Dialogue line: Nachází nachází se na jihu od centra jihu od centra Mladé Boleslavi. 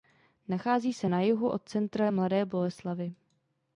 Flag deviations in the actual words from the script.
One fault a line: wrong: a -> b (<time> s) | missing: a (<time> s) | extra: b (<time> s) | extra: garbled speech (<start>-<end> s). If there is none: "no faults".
missing: nachází (0.9 s)
missing: jihu od centra (2.1 s)